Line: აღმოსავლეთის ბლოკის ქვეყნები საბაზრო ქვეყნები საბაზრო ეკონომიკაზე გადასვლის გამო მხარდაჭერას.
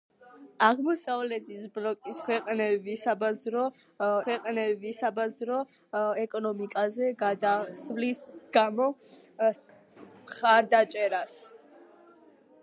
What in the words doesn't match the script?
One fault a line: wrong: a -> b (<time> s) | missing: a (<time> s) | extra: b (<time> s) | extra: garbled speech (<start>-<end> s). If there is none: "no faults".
no faults